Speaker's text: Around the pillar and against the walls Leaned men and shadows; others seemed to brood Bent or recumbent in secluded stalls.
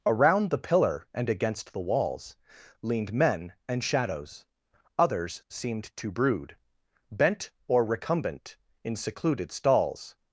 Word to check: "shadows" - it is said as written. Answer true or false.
true